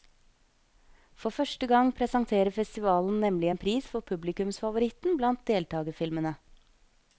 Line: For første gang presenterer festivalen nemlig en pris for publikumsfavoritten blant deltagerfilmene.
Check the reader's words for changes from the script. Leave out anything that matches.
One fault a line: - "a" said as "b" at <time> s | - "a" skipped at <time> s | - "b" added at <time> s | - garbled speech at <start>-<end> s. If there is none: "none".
none